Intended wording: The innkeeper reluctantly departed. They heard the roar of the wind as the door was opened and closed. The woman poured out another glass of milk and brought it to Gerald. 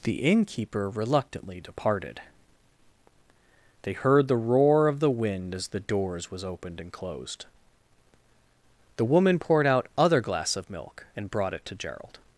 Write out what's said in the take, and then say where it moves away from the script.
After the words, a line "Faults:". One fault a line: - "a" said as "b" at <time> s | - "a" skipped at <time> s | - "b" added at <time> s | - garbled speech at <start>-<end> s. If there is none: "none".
The innkeeper reluctantly departed. They heard the roar of the wind as the doors was opened and closed. The woman poured out other glass of milk and brought it to Gerald.
Faults:
- "door" said as "doors" at 5.8 s
- "another" said as "other" at 10.0 s